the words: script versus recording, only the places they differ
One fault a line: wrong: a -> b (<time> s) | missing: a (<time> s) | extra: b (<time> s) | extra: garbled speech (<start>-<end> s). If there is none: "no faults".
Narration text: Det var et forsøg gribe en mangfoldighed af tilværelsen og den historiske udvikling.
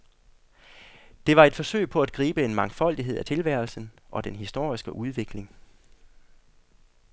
extra: på at (1.9 s)